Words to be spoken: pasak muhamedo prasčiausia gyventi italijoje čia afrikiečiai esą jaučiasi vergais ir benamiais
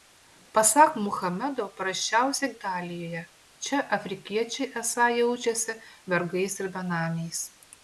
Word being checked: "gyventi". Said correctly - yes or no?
no